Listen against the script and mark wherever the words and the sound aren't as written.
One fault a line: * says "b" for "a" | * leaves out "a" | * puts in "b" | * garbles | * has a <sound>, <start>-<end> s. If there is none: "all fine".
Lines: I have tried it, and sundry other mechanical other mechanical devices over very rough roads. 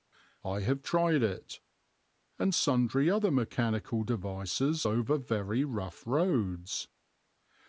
* leaves out "other mechanical"